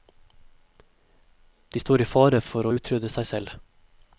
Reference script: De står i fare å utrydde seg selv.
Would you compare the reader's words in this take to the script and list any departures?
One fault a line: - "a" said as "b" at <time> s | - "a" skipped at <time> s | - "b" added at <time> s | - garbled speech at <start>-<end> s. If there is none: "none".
- "for" added at 2.5 s